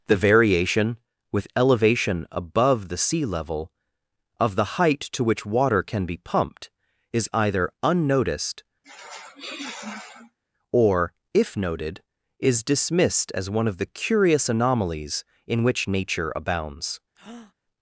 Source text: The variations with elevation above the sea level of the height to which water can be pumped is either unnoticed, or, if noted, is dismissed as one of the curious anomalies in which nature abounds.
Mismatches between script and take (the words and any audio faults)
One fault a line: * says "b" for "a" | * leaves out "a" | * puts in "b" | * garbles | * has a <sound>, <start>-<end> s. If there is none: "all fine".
* says "variation" for "variations"
* has a sniff, 8.8-10.4 s
* has a breath, 17.1-17.5 s